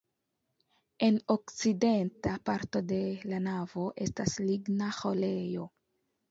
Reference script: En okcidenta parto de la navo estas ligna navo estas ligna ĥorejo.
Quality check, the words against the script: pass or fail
fail